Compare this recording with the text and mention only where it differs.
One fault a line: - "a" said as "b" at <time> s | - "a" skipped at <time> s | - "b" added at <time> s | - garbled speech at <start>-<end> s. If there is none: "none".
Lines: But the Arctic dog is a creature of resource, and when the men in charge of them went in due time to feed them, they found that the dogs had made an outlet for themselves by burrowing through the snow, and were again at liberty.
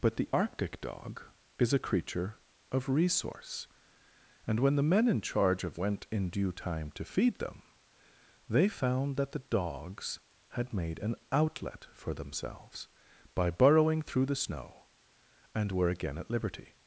- "them" skipped at 5.8 s